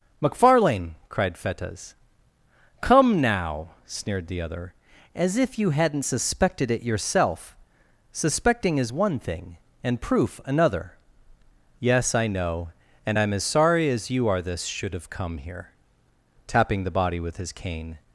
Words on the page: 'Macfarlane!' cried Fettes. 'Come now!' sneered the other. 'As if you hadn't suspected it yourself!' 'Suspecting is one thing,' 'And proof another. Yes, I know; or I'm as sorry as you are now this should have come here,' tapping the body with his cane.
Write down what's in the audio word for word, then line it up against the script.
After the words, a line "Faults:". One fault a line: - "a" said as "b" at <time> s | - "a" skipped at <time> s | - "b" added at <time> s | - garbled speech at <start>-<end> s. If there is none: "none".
'Macfarlane!' cried Fettes. 'Come now!' sneered the other. 'As if you hadn't suspected it yourself!' 'Suspecting is one thing,' 'And proof another. Yes, I know; and I'm as sorry as you are this should have come here,' tapping the body with his cane.
Faults:
- "or" said as "and" at 13.1 s
- "now" skipped at 14.4 s